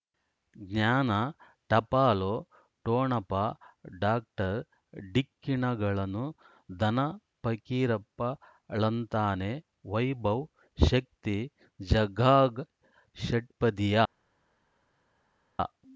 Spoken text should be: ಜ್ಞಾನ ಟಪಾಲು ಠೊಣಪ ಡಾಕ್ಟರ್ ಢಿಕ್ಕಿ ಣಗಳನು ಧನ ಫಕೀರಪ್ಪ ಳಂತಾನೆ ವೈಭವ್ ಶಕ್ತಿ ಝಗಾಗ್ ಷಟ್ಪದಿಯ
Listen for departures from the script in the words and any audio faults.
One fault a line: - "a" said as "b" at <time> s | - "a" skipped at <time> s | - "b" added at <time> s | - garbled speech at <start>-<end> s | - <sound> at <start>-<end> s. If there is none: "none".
none